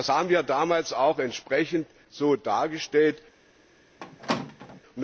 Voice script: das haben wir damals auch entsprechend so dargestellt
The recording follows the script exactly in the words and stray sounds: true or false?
false